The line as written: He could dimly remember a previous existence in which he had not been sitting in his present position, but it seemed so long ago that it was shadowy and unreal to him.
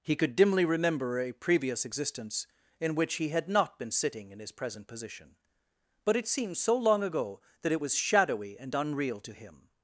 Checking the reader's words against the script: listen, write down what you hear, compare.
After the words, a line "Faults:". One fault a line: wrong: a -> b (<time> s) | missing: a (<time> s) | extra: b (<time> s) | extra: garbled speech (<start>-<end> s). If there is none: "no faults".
He could dimly remember a previous existence in which he had not been sitting in his present position, but it seemed so long ago that it was shadowy and unreal to him.
Faults:
no faults